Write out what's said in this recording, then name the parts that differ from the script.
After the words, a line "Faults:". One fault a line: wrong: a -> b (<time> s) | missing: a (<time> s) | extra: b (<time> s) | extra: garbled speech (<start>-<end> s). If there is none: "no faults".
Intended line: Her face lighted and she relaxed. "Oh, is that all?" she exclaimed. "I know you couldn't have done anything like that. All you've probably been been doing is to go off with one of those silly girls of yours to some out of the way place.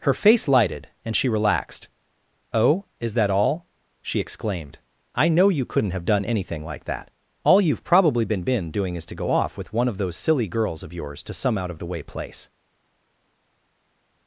Her face lighted and she relaxed. "Oh, is that all?" she exclaimed. "I know you couldn't have done anything like that. All you've probably been been doing is to go off with one of those silly girls of yours to some out of the way place.
Faults:
no faults